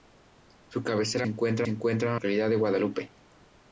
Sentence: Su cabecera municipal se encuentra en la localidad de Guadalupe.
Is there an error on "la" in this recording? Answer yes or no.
yes